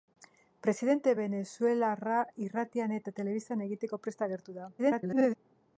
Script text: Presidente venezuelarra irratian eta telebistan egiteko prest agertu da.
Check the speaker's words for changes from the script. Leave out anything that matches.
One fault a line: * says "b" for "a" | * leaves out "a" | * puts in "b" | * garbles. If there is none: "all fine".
* garbles